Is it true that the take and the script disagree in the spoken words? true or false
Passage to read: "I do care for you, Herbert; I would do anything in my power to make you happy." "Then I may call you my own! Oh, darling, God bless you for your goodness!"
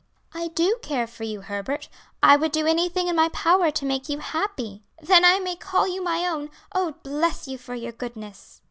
true